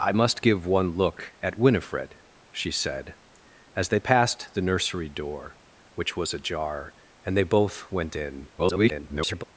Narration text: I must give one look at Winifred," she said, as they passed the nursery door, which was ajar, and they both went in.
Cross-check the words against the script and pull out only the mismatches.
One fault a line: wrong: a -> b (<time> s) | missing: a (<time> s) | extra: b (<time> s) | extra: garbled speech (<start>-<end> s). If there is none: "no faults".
extra: garbled speech (8.6-9.4 s)